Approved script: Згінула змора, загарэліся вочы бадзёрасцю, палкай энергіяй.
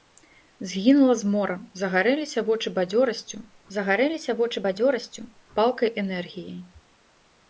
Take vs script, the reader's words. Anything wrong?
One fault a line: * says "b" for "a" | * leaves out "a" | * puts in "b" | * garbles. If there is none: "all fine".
* puts in "загарэліся вочы бадзёрасцю"